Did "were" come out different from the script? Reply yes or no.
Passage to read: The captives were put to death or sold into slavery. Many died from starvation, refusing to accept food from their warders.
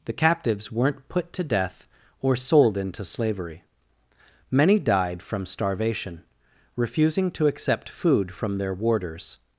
yes